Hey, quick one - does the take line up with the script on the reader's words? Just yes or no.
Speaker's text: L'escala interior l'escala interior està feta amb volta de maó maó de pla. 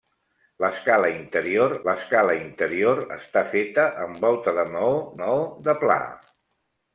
yes